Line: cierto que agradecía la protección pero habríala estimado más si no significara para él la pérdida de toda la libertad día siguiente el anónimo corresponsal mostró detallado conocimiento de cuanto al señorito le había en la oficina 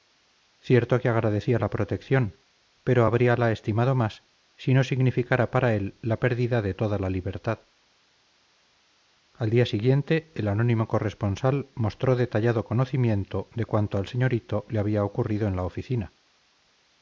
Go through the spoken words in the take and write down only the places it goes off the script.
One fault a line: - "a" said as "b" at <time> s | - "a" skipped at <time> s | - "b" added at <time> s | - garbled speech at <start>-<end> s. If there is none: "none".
- "al" added at 9.3 s
- "ocurrido" added at 15.0 s